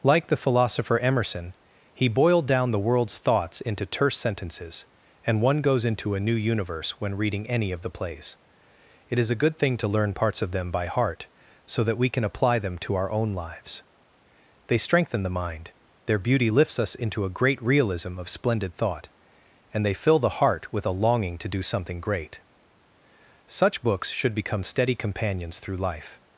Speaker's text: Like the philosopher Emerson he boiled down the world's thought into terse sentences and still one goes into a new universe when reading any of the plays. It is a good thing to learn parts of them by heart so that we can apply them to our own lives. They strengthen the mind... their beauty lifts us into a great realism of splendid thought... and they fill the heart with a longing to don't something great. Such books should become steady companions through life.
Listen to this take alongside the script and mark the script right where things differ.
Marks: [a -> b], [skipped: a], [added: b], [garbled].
Like the philosopher Emerson he boiled down the world's [thought -> thoughts] into terse sentences and [skipped: still] one goes into a new universe when reading any of the plays. It is a good thing to learn parts of them by heart so that we can apply them to our own lives. They strengthen the mind... their beauty lifts us into a great realism of splendid thought... and they fill the heart with a longing to [don't -> do] something great. Such books should become steady companions through life.